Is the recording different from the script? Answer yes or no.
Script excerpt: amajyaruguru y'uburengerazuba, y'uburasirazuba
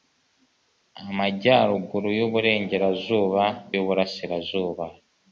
no